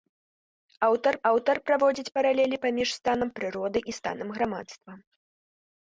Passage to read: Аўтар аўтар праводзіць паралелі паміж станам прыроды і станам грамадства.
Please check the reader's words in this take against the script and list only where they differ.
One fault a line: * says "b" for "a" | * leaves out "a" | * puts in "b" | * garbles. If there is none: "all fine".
all fine